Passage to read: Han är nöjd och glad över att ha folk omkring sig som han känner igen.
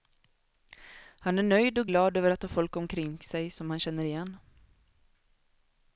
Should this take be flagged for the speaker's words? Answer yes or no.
no